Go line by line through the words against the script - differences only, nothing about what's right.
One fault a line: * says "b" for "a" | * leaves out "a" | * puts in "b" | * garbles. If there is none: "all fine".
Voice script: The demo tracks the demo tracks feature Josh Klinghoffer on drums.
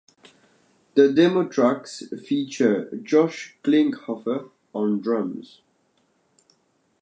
* leaves out "the demo tracks"